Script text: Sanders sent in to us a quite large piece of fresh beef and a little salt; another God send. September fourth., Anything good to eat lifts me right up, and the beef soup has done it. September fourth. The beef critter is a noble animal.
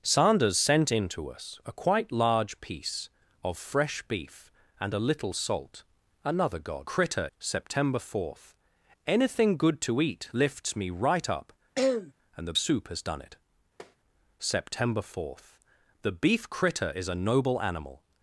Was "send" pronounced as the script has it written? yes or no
no